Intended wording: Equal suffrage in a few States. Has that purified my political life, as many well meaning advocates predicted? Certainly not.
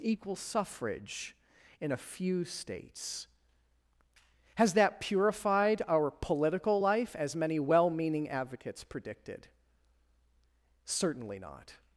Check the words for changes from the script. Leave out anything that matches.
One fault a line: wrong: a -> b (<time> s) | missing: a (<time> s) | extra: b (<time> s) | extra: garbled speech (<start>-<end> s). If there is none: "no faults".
wrong: my -> our (5.9 s)